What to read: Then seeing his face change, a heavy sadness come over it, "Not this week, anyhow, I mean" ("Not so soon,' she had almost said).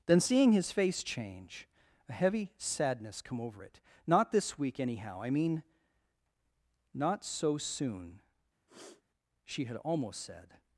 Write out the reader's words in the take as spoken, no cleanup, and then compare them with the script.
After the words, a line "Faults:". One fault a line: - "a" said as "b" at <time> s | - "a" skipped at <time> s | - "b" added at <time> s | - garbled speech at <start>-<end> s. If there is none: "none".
Then seeing his face change, a heavy sadness come over it, "Not this week, anyhow, I mean" ("Not so soon,' she had almost said).
Faults:
none